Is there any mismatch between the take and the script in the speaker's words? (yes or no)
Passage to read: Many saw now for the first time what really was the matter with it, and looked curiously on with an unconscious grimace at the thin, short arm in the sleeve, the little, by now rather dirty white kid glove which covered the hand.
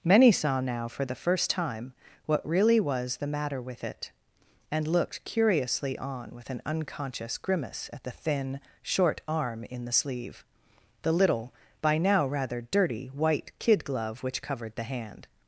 no